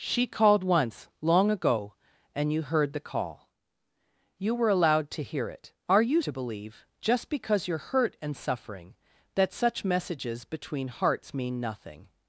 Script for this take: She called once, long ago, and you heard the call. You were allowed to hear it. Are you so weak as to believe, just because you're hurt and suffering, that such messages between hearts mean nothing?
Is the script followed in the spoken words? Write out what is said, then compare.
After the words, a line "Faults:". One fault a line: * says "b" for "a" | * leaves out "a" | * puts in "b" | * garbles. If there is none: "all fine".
She called once, long ago, and you heard the call. You were allowed to hear it. Are you to believe, just because you're hurt and suffering, that such messages between hearts mean nothing?
Faults:
* leaves out "so weak as"